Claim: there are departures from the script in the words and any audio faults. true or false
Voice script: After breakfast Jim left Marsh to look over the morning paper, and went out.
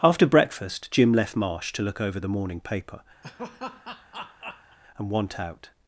true